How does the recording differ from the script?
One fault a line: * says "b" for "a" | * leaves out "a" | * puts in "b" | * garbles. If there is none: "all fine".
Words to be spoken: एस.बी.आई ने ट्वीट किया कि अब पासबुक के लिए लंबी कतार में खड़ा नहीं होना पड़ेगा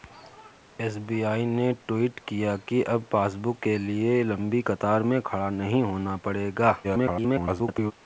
* garbles